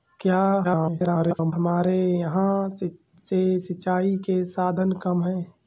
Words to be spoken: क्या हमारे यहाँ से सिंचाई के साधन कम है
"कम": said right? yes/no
yes